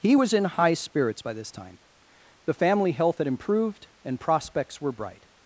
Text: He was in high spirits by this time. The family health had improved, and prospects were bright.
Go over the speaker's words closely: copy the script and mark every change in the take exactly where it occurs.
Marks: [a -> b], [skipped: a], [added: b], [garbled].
He was in high spirits by this time. The family health had improved, and prospects were bright.